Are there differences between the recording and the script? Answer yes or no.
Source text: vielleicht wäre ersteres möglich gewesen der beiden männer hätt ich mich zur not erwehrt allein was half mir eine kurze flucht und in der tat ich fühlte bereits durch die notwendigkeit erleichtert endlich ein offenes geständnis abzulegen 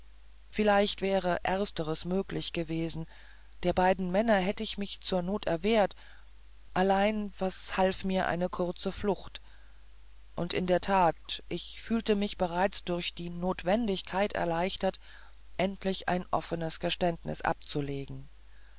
yes